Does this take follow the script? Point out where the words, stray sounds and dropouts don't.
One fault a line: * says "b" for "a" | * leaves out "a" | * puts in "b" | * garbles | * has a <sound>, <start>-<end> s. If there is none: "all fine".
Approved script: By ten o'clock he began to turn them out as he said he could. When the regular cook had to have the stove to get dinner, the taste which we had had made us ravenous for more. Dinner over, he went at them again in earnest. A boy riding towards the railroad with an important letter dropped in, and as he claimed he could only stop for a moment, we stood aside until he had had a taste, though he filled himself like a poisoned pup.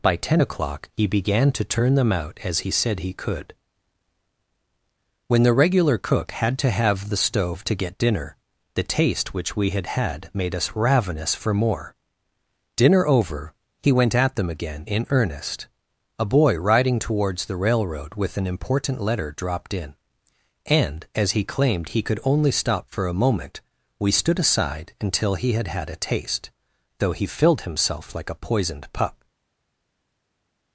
all fine